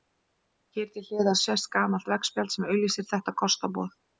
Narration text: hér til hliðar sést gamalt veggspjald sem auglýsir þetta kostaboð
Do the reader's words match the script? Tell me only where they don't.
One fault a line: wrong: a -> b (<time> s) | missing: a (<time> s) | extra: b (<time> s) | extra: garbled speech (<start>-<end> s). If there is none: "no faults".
no faults